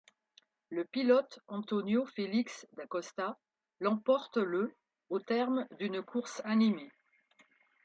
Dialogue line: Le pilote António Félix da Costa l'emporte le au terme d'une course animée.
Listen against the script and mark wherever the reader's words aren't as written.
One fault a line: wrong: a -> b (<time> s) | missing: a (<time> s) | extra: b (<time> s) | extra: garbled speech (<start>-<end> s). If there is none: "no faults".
no faults